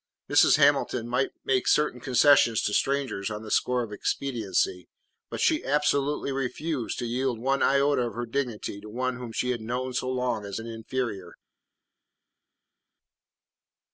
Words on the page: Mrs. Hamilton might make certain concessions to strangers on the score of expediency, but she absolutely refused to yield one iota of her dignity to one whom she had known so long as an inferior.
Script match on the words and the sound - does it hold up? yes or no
yes